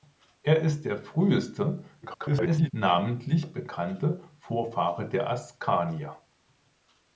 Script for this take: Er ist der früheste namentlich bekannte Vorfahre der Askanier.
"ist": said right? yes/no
yes